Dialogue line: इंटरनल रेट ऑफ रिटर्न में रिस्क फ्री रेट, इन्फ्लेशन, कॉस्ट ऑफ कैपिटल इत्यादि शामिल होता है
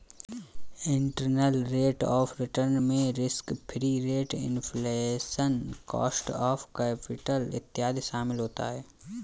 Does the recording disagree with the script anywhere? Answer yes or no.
no